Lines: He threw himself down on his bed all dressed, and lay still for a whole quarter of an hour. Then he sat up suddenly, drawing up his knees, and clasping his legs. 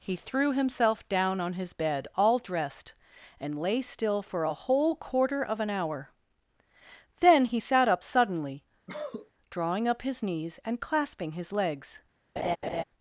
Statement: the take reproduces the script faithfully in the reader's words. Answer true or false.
true